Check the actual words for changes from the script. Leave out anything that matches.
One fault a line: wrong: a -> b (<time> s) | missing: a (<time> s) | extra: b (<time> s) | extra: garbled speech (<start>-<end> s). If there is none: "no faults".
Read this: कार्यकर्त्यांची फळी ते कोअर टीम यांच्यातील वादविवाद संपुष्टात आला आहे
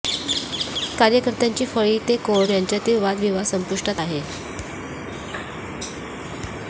missing: टीम (2.5 s)
missing: आला (4.0 s)